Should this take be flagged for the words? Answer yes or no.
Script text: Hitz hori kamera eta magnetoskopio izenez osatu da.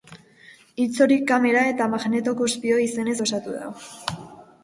no